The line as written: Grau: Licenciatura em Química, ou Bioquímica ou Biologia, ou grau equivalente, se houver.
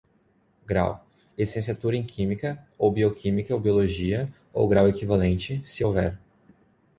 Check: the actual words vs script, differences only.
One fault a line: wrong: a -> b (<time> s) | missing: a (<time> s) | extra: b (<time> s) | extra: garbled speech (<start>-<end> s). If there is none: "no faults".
no faults